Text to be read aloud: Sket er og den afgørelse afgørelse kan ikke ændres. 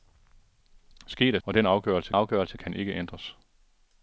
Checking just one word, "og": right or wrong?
right